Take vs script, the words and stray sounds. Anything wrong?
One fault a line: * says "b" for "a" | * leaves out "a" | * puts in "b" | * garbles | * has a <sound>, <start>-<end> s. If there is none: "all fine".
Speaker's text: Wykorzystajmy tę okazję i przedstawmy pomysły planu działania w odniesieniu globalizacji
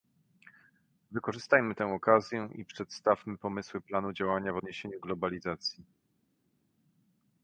all fine